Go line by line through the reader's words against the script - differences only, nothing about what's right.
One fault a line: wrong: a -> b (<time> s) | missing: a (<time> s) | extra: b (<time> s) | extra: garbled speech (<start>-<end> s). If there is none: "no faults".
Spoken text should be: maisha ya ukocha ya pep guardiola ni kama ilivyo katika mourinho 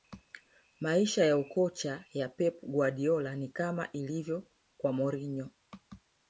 wrong: katika -> kwa (4.8 s)